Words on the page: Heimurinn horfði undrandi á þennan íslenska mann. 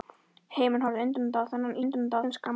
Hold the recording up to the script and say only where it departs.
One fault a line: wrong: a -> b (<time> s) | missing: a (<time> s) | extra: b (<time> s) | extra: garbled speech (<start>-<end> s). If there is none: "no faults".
wrong: íslenska -> undrandi (1.8 s)